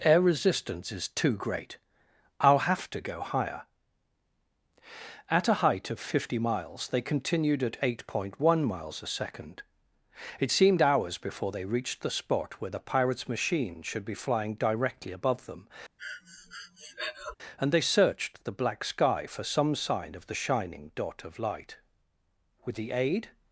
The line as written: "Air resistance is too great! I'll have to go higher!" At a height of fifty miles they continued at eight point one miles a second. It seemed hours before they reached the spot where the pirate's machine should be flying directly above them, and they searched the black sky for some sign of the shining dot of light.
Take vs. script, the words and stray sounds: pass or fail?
fail